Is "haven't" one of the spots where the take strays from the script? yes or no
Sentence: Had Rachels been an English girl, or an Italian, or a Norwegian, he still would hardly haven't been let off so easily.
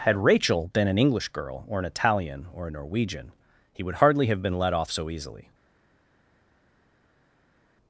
yes